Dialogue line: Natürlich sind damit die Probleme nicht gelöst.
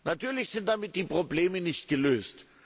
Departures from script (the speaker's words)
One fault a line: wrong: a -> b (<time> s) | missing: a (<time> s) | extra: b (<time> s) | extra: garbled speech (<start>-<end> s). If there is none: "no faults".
no faults